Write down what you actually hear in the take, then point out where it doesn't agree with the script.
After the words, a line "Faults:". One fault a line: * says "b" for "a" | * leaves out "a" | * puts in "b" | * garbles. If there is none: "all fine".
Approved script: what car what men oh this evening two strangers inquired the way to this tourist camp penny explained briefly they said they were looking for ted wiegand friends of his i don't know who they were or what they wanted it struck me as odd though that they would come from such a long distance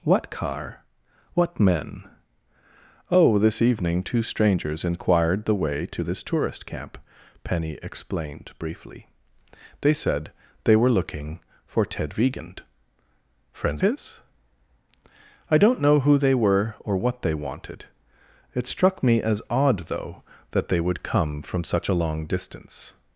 what car what men oh this evening two strangers inquired the way to this tourist camp penny explained briefly they said they were looking for ted wiegand friends his i don't know who they were or what they wanted it struck me as odd though that they would come from such a long distance
Faults:
* leaves out "of"